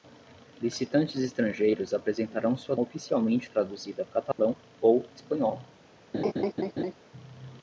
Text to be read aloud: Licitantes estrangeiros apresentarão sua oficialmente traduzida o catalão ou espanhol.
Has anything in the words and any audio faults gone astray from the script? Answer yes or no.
yes